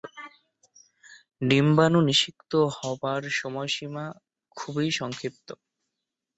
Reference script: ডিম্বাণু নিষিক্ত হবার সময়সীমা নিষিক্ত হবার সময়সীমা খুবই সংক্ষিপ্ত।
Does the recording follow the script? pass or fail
fail